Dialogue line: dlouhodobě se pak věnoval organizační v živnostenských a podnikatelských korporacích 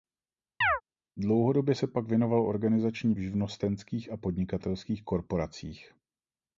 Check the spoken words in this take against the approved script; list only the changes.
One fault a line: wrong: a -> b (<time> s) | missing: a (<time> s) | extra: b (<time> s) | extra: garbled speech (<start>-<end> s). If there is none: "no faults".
no faults